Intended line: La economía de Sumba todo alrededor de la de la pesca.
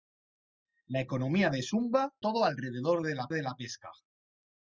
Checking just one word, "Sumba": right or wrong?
right